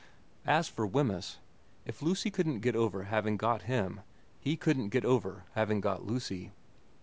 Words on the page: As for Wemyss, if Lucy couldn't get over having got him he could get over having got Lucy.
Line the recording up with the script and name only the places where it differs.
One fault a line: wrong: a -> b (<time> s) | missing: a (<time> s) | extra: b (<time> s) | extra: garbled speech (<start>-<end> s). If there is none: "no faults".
wrong: could -> couldn't (4.6 s)